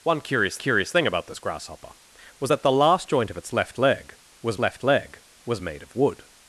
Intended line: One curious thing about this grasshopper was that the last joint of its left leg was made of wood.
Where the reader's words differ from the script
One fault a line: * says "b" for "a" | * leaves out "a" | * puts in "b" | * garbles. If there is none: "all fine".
* puts in "curious"
* puts in "left leg was"